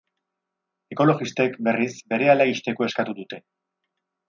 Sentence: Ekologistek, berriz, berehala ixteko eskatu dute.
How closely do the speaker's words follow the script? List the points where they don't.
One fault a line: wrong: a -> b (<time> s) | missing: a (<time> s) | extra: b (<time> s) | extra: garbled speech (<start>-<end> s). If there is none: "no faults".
no faults